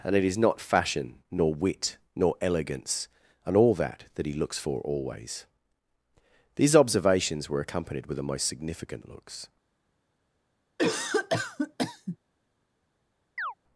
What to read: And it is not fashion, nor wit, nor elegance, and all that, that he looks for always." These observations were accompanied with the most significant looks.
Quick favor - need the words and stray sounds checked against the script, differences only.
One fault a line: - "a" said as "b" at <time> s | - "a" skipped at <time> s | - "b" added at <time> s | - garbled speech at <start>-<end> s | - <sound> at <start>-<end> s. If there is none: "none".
- cough at 10.8-12.2 s
- chirp at 13.4-13.5 s